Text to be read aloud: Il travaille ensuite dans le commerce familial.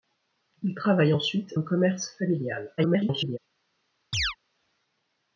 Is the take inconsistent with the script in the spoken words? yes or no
yes